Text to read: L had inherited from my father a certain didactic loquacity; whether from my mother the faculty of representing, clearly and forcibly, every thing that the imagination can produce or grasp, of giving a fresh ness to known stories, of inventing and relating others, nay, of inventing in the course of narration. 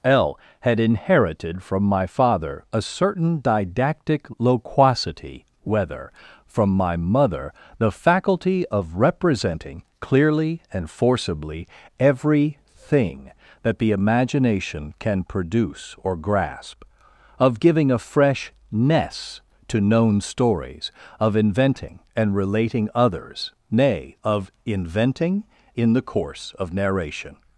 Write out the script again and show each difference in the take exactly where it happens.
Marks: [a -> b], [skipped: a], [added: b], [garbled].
L had inherited from my father a certain didactic loquacity; whether from my mother the faculty of representing, clearly and forcibly, every thing that the imagination can produce or grasp, of giving a fresh ness to known stories, of inventing and relating others, nay, of inventing in the course of narration.